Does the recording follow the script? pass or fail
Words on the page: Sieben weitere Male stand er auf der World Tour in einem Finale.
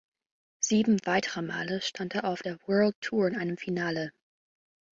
pass